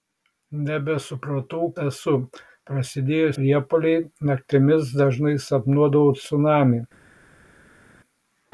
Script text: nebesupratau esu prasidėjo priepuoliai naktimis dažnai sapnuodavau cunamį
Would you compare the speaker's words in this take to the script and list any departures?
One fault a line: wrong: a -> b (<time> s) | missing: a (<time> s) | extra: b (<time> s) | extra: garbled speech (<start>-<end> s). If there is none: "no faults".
no faults